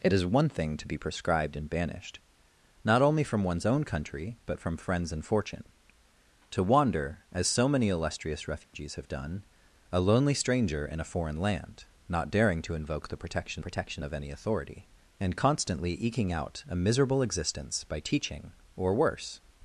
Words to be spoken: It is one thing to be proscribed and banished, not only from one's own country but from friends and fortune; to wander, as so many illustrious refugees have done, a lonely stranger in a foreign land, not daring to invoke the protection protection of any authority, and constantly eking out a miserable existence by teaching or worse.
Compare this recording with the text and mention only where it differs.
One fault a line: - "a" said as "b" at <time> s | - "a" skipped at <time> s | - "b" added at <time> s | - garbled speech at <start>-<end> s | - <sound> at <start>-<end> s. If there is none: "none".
- dropout at 8.6-8.7 s